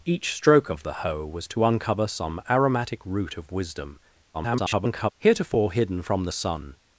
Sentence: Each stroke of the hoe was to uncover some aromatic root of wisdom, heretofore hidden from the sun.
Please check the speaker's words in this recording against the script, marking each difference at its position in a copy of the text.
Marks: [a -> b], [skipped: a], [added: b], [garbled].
Each stroke of the hoe was to uncover some aromatic root of wisdom, [garbled] heretofore hidden from the sun.